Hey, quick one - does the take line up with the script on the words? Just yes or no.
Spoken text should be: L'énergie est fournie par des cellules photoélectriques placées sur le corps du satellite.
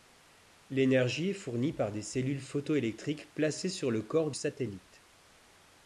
no